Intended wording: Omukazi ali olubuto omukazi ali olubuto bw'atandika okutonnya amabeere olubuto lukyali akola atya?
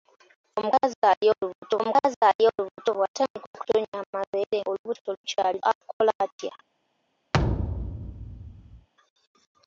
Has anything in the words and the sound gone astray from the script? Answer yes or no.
yes